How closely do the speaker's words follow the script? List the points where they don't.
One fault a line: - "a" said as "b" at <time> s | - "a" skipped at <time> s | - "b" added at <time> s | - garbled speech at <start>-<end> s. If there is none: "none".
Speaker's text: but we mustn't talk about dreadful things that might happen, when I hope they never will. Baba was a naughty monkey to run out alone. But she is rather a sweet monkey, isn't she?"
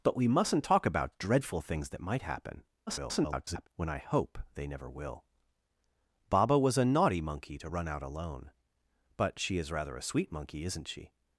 - garbled speech at 2.9-3.7 s